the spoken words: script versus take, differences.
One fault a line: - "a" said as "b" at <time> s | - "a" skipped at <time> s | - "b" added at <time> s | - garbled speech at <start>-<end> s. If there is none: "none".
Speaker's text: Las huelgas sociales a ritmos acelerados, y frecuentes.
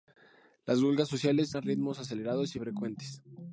none